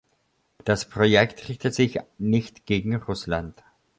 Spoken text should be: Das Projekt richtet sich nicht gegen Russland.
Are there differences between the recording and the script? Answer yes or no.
no